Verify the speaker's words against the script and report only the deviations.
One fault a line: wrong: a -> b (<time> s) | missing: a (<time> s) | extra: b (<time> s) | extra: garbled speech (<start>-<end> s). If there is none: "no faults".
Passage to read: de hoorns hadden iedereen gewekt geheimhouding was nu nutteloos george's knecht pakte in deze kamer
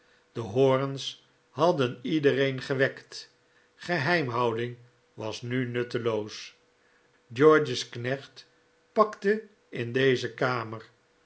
no faults